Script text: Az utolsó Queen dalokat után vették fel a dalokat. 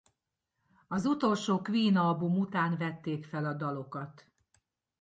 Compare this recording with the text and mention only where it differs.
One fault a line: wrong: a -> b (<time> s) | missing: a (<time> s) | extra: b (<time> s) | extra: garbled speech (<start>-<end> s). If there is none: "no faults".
wrong: dalokat -> album (2.0 s)